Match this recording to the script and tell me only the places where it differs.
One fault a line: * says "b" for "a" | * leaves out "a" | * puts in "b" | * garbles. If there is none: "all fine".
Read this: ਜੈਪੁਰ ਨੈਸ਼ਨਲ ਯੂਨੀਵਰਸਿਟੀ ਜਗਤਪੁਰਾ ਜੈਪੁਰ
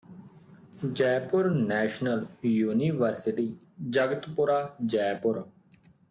all fine